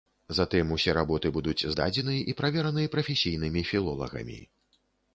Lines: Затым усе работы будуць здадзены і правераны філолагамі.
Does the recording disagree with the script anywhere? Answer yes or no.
yes